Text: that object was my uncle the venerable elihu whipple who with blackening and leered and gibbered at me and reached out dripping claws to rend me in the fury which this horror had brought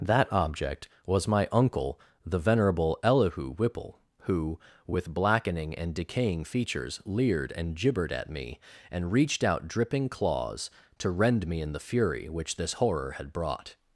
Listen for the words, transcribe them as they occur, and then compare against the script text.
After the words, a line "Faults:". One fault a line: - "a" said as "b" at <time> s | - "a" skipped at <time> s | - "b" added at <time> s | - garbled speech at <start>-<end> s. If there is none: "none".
that object was my uncle the venerable elihu whipple who with blackening and decaying features leered and gibbered at me and reached out dripping claws to rend me in the fury which this horror had brought
Faults:
- "decaying features" added at 6.0 s